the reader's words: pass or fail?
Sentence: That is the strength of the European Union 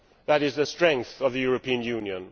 pass